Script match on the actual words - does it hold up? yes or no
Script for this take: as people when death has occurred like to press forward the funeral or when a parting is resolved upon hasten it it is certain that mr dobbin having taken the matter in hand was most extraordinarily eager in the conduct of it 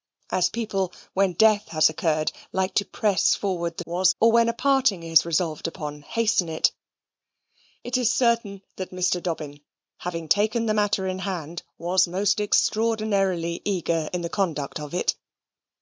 no